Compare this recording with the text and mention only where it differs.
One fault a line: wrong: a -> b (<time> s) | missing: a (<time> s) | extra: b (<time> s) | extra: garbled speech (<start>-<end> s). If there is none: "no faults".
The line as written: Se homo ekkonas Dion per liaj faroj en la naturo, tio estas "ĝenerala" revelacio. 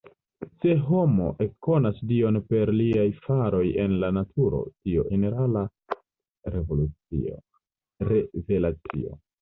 missing: estas (5.0 s)